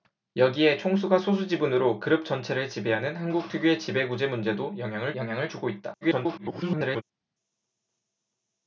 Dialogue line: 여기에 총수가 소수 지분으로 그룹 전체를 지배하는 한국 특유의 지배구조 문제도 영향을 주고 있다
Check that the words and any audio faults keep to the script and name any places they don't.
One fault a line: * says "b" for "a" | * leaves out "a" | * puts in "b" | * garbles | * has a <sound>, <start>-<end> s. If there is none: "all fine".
* puts in "영향을"
* garbles